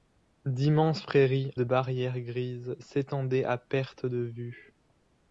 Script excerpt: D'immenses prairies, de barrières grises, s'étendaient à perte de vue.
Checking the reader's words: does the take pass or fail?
pass